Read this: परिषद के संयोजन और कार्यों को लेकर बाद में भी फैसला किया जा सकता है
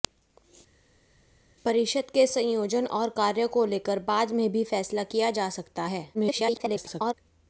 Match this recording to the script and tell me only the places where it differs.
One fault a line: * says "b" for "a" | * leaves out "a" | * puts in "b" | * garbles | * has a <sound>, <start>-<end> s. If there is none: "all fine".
* garbles